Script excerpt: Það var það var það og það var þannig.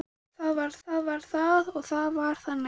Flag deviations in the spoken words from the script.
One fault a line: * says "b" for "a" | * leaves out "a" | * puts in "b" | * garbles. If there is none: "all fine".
all fine